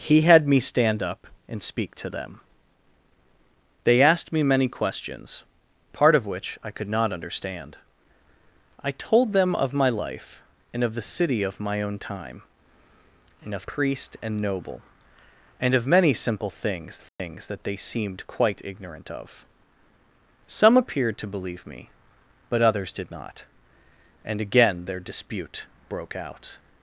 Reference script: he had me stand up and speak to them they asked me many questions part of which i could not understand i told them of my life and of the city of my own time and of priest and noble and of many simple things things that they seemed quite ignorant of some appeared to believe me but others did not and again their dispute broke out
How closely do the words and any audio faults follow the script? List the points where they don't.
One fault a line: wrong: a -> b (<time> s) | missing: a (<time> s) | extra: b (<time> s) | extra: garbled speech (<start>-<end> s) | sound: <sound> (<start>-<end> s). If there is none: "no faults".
sound: dropout (17.1-17.2 s)